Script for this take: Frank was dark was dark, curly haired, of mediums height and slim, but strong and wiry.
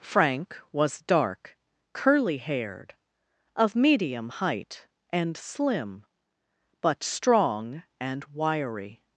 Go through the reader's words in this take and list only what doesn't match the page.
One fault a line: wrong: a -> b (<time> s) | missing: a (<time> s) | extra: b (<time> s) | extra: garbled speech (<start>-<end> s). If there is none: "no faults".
missing: was dark (1.6 s)
wrong: mediums -> medium (3.8 s)